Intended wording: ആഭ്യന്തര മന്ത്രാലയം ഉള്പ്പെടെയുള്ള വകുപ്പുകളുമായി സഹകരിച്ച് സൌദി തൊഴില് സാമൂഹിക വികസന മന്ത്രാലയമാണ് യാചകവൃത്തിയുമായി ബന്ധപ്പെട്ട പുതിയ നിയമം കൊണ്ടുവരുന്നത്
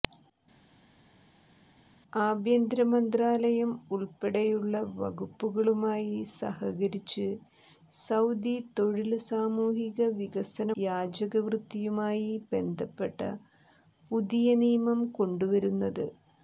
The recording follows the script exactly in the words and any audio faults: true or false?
false